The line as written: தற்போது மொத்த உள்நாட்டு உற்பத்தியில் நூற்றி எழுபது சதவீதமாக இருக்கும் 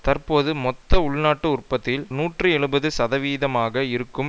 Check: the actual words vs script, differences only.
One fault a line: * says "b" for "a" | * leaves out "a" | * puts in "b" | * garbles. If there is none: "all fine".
all fine